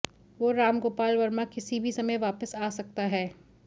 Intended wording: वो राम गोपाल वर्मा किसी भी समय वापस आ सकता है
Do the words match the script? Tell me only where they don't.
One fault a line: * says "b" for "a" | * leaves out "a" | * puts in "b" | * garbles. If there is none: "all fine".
all fine